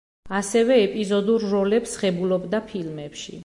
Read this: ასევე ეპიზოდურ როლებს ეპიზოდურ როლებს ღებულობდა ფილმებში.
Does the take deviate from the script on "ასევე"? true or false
false